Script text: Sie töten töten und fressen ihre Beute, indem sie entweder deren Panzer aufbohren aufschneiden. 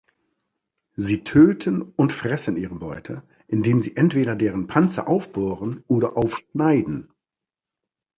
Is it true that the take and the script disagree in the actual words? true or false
true